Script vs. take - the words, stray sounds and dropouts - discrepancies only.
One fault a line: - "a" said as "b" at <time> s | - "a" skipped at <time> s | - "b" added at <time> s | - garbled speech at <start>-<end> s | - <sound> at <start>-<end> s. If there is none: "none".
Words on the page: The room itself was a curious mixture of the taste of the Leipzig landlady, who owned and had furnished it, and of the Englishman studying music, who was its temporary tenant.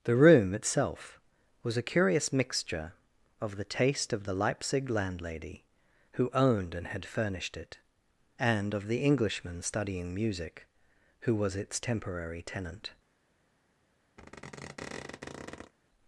- squeak at 14.2-15.7 s